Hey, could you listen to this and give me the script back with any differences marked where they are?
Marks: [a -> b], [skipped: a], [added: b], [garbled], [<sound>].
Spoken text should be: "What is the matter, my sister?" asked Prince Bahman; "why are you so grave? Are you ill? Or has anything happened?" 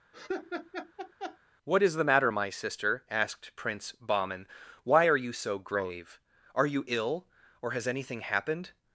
[laugh] "What is the matter, my sister?" asked Prince Bahman; "why are you so grave? Are you ill? Or has anything happened?"